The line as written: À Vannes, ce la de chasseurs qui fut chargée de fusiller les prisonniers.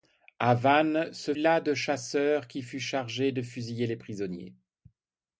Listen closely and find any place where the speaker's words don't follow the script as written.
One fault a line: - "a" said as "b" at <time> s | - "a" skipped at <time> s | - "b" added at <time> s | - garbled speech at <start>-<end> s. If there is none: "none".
none